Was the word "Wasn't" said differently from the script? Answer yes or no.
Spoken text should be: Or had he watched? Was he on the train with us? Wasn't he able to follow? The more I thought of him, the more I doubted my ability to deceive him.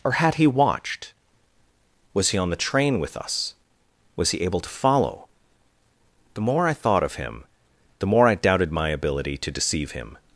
yes